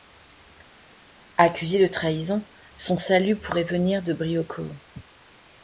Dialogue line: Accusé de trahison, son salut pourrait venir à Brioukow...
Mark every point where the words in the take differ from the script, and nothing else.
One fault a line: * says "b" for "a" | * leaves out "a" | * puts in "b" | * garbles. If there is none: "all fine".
* says "de" for "à"